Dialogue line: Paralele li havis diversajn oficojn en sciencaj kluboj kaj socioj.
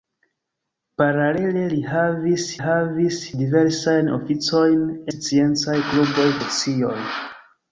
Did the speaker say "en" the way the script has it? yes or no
no